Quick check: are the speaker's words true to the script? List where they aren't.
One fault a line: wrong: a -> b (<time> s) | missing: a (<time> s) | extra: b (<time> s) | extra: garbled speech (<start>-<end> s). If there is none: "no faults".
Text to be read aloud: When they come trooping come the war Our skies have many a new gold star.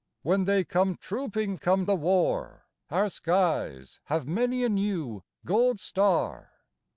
no faults